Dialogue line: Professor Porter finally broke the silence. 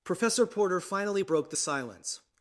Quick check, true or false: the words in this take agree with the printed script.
true